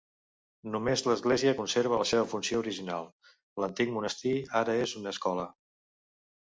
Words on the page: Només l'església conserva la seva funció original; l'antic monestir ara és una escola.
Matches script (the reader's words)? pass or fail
pass